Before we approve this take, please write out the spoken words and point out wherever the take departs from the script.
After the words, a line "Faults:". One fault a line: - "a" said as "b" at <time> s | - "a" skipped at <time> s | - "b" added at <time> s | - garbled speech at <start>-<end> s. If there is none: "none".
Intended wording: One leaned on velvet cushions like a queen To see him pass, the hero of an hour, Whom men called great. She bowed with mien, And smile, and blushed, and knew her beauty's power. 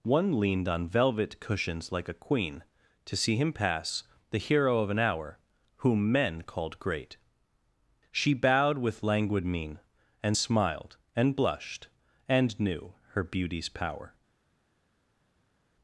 One leaned on velvet cushions like a queen To see him pass, the hero of an hour, Whom men called great. She bowed with languid mien, And smiled, and blushed, and knew her beauty's power.
Faults:
- "languid" added at 9.0 s
- "smile" said as "smiled" at 10.3 s